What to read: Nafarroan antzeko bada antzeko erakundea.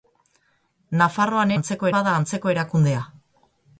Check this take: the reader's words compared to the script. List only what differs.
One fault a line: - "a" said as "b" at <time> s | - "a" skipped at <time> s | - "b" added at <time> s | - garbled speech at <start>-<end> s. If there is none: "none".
none